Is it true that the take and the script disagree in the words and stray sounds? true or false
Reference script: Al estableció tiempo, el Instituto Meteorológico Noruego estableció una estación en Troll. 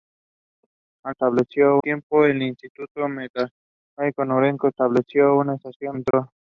true